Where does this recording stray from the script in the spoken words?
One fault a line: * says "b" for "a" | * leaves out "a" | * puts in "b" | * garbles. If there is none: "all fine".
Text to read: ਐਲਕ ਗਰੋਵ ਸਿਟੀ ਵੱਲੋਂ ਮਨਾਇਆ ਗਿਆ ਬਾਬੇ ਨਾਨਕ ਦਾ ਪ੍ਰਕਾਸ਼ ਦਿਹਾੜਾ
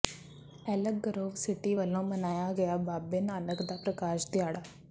all fine